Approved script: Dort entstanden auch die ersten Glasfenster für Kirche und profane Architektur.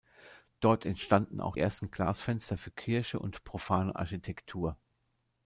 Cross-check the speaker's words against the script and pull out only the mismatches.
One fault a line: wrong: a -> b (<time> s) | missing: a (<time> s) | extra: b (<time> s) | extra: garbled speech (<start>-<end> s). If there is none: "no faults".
missing: die (1.6 s)